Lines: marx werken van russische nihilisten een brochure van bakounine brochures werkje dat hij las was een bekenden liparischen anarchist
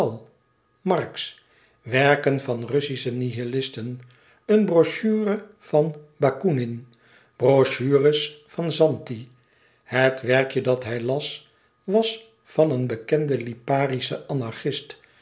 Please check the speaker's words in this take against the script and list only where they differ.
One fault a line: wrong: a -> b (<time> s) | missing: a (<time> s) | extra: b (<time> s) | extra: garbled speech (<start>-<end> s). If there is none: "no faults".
extra: van zanti het (8.5 s)
extra: van (12.4 s)